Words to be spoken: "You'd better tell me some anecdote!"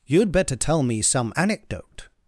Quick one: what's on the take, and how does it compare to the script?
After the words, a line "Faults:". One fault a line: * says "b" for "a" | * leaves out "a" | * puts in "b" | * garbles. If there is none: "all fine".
"You'd better tell me some anecdote!"
Faults:
all fine